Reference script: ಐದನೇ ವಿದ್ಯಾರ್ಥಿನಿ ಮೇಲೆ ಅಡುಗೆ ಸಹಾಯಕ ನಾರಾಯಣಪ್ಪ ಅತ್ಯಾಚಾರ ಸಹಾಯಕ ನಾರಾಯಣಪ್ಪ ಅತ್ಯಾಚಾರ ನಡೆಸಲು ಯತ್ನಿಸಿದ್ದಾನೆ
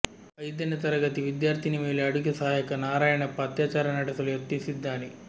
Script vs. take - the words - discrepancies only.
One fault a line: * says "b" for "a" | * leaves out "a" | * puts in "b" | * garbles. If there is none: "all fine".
* puts in "ತರಗತಿ"
* leaves out "ಸಹಾಯಕ ನಾರಾಯಣಪ್ಪ ಅತ್ಯಾಚಾರ"